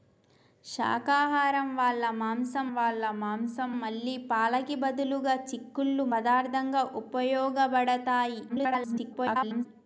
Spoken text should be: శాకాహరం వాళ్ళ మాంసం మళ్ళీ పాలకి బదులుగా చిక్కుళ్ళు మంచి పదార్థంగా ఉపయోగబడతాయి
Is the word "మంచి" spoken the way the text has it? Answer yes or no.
no